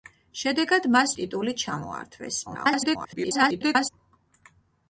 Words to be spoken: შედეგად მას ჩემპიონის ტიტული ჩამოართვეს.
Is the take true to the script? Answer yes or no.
no